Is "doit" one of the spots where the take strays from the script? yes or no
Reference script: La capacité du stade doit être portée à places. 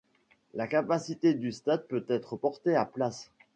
yes